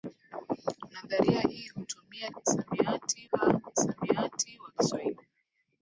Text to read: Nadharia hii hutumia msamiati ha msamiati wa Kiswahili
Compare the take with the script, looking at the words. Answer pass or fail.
pass